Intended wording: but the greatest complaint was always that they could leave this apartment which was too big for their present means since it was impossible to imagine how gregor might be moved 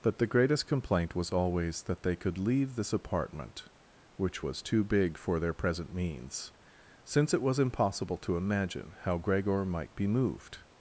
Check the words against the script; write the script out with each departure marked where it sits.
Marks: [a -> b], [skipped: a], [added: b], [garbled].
but the greatest complaint was always that they could leave this apartment which was too big for their present means since it was impossible to imagine how gregor might be moved